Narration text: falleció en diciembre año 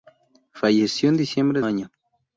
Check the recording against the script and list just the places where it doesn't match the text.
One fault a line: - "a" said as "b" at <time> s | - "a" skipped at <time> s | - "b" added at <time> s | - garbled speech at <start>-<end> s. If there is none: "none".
none